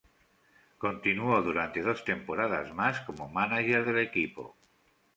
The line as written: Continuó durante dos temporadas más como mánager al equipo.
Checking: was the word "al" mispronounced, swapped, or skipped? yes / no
yes